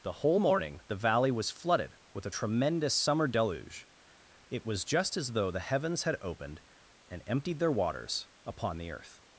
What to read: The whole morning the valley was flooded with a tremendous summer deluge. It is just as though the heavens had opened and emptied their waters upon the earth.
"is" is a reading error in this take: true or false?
true